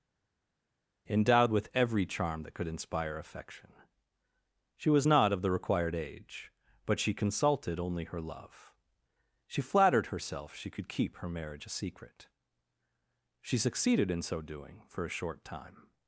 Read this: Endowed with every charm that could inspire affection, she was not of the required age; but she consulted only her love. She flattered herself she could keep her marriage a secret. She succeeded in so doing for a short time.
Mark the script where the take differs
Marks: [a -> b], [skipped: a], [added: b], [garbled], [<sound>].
Endowed with every charm that could inspire affection, she was not of the required age; but she consulted only her love. She flattered herself she could keep her marriage a secret. She succeeded in so doing for a short time.